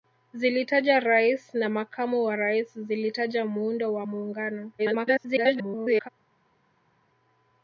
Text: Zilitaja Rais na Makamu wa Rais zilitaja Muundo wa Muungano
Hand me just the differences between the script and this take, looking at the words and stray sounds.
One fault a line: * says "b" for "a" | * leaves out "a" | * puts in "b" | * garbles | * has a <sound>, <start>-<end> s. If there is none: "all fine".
* garbles